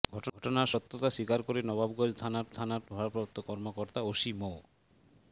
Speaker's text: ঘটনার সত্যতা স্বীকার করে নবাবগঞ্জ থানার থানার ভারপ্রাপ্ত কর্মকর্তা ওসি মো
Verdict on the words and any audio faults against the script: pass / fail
pass